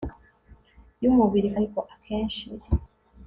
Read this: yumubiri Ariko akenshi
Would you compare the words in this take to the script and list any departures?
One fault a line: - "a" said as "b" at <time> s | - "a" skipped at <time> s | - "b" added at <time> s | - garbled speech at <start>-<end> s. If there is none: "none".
none